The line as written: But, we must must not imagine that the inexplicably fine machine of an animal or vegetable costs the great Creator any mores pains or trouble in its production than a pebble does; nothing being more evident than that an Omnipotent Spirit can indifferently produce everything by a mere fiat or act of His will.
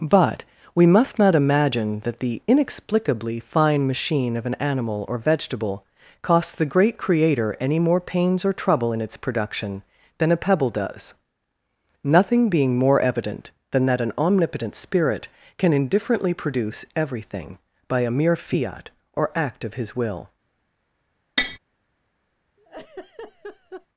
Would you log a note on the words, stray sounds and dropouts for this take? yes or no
yes